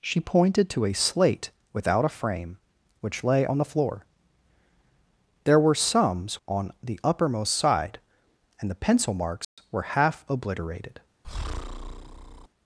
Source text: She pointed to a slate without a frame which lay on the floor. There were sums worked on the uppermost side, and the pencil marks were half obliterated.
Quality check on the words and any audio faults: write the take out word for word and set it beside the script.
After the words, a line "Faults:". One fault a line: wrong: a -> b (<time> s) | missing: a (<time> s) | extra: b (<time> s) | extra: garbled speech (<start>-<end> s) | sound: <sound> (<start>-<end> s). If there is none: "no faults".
She pointed to a slate without a frame which lay on the floor. There were sums on the uppermost side, and the pencil marks were half obliterated.
Faults:
missing: worked (6.4 s)
sound: dropout (9.4-9.6 s)
sound: breath (11.2-12.5 s)